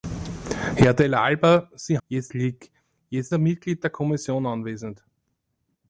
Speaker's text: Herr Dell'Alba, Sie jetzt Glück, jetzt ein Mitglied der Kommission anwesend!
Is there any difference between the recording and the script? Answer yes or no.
no